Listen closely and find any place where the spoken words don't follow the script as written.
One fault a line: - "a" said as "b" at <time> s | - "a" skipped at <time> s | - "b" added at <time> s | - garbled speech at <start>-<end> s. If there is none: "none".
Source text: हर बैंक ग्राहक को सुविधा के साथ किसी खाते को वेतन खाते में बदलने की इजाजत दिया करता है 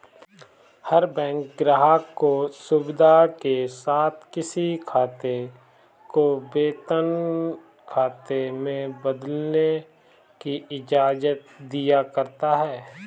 none